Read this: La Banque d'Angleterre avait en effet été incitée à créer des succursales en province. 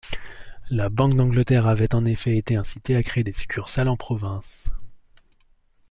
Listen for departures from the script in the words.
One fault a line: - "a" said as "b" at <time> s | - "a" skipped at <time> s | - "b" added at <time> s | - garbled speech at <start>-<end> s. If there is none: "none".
none